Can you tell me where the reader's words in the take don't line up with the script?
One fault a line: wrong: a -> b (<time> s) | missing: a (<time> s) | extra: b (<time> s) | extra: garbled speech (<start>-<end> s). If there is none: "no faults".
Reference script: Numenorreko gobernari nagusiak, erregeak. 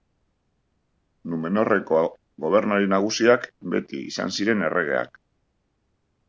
extra: beti izan ziren (3.8 s)